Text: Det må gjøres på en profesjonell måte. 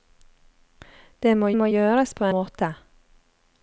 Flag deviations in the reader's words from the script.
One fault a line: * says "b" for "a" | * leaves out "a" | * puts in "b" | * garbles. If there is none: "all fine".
* puts in "må"
* leaves out "en profesjonell"